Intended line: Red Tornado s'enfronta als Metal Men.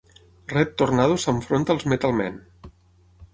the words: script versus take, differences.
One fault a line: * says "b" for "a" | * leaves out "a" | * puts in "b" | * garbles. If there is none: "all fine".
all fine